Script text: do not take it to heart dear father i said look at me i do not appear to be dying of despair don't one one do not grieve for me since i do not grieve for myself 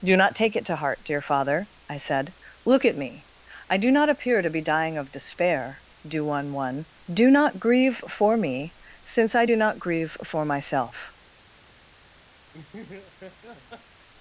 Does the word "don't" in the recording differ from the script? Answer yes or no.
yes